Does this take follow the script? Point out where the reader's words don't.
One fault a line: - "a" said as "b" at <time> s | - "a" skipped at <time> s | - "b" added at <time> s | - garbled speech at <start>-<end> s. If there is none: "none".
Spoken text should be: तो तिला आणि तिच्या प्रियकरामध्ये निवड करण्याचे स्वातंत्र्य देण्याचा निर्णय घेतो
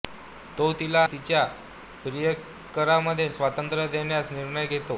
- "आणि" skipped at 1.0 s
- "निवड करण्याचे" skipped at 3.3 s